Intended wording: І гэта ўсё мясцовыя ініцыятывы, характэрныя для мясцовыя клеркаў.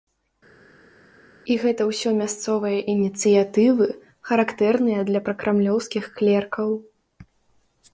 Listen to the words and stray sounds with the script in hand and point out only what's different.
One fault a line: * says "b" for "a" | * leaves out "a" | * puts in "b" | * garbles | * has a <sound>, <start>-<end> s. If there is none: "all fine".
* says "пракрамлёўскіх" for "мясцовыя"